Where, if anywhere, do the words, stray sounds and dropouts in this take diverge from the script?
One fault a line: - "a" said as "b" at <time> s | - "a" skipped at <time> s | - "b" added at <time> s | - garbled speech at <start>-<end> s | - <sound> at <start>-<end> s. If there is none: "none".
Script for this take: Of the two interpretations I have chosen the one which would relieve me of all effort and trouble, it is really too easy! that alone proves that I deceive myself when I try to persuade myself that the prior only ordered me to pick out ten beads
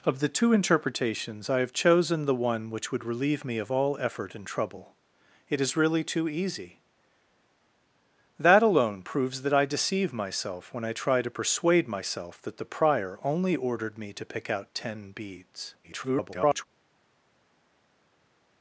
- garbled speech at 15.8-16.7 s